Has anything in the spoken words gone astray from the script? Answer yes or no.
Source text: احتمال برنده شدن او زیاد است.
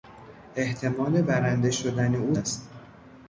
yes